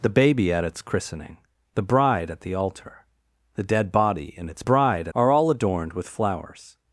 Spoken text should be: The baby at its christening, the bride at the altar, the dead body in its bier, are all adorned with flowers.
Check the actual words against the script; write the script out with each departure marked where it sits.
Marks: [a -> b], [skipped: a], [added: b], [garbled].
The baby at its christening, the bride at the altar, the dead body in its [bier, -> bride] are all adorned with flowers.